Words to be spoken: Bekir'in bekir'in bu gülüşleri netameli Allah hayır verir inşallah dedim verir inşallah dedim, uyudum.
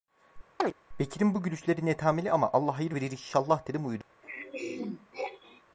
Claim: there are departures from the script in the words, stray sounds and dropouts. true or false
true